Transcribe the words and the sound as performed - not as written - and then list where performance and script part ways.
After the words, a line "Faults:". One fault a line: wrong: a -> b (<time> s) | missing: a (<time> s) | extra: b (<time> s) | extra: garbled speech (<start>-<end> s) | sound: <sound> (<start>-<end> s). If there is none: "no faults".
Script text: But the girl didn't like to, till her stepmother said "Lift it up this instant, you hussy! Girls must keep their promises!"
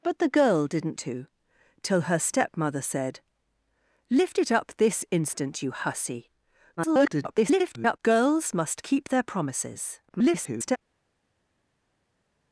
But the girl didn't to, till her stepmother said "Lift it up this instant, you hussy! [garbled] Girls must keep their promises!" [garbled]
Faults:
missing: like (1.0 s)
extra: garbled speech (6.8-8.0 s)
extra: garbled speech (10.1-10.8 s)